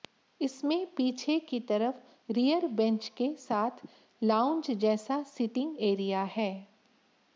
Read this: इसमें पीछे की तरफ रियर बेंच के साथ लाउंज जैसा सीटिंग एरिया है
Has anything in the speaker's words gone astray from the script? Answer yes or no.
no